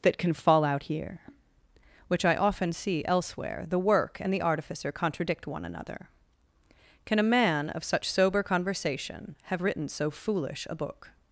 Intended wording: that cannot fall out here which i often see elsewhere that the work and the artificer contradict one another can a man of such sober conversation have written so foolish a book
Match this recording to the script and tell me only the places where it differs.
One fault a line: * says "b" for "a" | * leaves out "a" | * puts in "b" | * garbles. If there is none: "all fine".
* says "can" for "cannot"
* leaves out "that"